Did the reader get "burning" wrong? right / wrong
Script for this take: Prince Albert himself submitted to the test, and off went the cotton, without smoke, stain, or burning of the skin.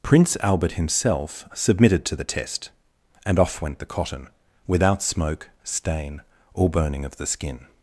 right